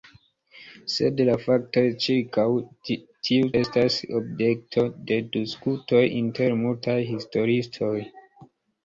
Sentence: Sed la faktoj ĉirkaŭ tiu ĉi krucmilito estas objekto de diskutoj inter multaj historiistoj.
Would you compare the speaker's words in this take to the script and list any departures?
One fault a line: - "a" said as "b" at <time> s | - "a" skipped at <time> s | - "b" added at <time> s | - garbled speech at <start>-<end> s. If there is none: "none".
- "ĉi krucmilito" skipped at 3.5 s